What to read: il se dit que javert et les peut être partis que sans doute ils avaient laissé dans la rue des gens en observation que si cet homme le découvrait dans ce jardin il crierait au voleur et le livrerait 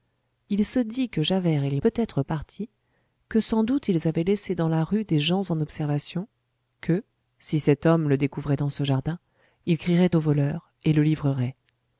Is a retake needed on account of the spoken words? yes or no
no